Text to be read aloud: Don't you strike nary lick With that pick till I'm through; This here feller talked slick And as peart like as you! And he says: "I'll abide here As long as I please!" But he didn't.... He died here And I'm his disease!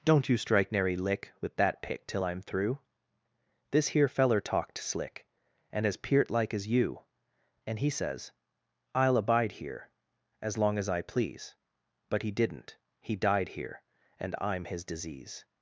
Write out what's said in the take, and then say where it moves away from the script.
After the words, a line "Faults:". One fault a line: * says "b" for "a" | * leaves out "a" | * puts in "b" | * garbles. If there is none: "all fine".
Don't you strike nary lick With that pick till I'm through; This here feller talked slick And as peart like as you! And he says: "I'll abide here As long as I please!" But he didn't.... He died here And I'm his disease!
Faults:
all fine